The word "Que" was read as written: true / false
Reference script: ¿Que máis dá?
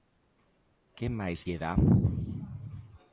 true